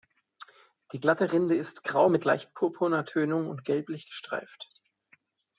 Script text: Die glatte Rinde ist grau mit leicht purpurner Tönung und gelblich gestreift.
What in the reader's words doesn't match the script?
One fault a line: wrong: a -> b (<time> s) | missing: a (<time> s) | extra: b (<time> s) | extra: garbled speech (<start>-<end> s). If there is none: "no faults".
no faults